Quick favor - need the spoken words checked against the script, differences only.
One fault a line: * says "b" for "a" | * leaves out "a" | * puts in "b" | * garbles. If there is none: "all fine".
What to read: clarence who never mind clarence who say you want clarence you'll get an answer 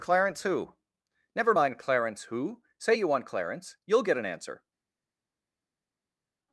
all fine